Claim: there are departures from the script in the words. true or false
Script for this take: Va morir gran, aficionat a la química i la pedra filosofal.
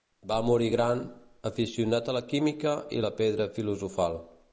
false